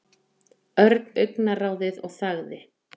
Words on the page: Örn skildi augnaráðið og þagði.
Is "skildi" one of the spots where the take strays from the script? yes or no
yes